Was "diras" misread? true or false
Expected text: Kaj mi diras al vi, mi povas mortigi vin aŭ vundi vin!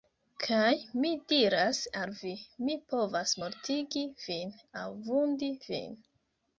false